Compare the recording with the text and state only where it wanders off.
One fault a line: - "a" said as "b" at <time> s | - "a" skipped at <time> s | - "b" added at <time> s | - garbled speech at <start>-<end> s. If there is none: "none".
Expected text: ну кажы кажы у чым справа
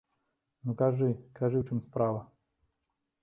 none